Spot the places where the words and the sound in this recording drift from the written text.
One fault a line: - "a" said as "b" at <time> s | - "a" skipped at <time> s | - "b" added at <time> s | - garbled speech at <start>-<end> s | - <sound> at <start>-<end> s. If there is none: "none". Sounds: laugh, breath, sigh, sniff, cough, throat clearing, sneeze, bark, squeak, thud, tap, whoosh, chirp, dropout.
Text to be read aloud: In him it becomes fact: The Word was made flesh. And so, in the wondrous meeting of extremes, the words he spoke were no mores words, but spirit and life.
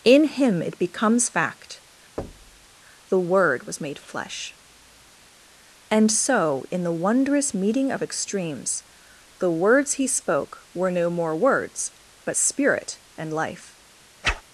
- thud at 2.2-2.7 s
- "mores" said as "more" at 11.1 s
- whoosh at 14.2-14.4 s